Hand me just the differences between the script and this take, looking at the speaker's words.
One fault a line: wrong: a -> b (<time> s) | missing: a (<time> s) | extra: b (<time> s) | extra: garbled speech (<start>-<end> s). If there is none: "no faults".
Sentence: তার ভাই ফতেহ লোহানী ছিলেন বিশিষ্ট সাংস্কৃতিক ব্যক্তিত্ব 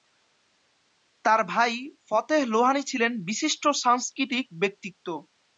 no faults